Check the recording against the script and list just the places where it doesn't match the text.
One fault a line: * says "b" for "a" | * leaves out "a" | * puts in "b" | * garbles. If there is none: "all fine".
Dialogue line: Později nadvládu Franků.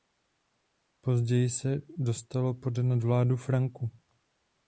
* puts in "se dostalo pod"